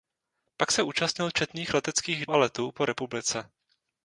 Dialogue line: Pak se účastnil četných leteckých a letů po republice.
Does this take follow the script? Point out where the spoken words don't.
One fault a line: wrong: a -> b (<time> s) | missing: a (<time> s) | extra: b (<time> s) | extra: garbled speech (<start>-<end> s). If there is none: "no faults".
no faults